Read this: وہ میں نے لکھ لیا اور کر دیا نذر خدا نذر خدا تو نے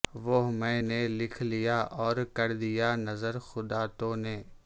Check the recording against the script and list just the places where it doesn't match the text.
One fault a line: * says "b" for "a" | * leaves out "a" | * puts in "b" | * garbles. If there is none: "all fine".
* leaves out "نذر خدا"